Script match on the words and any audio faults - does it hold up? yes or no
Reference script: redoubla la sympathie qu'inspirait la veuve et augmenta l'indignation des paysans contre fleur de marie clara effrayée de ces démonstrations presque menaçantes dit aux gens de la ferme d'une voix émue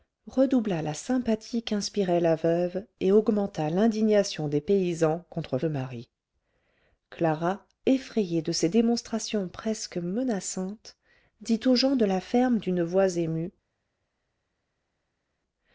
no